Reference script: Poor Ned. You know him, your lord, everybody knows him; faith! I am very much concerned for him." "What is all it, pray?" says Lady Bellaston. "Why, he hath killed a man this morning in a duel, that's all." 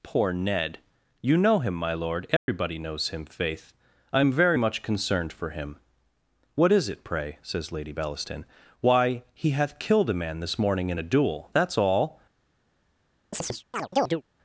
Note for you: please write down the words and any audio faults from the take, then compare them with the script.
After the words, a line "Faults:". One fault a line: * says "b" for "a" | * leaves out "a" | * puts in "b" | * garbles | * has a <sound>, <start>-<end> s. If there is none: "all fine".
Poor Ned. You know him, my lord, everybody knows him; faith! I am very much concerned for him." "What is it, pray?" says Lady Bellaston. "Why, he hath killed a man this morning in a duel, that's all."
Faults:
* says "my" for "your"
* has a dropout, 2.4-2.5 s
* leaves out "all"
* has a chirp, 13.3-14.2 s